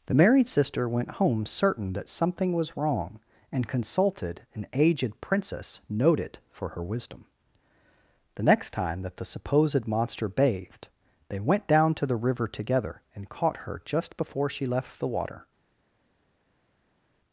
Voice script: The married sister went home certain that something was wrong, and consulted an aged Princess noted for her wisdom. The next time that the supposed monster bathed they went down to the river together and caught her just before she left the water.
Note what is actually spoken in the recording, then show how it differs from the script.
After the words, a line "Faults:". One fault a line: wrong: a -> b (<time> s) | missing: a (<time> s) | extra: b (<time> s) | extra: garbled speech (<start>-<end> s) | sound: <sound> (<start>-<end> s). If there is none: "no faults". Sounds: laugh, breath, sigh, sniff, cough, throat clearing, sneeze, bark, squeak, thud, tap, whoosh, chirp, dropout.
The married sister went home certain that something was wrong, and consulted an aged Princess noted for her wisdom. The next time that the supposed monster bathed they went down to the river together and caught her just before she left the water.
Faults:
no faults